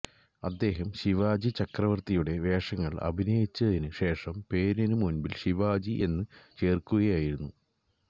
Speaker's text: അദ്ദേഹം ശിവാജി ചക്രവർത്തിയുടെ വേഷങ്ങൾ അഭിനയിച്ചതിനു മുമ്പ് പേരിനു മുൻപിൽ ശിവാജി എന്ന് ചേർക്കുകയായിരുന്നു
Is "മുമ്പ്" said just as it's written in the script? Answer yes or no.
no